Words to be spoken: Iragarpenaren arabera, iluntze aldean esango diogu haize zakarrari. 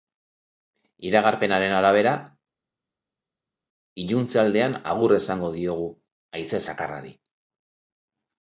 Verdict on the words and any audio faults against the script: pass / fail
fail